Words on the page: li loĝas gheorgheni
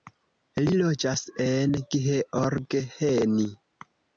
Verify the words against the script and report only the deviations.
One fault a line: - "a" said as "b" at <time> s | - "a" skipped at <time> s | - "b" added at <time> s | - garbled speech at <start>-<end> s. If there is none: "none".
- "en" added at 1.4 s